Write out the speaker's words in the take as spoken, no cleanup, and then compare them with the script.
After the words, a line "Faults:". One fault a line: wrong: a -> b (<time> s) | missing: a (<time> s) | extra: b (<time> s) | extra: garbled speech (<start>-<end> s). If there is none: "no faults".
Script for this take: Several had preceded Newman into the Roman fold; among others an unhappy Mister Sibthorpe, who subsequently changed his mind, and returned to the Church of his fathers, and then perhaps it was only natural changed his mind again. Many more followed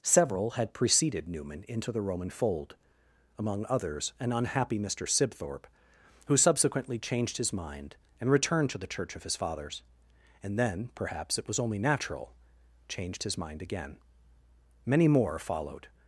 Several had preceded Newman into the Roman fold; among others an unhappy Mister Sibthorpe, who subsequently changed his mind, and returned to the Church of his fathers, and then perhaps it was only natural changed his mind again. Many more followed
Faults:
no faults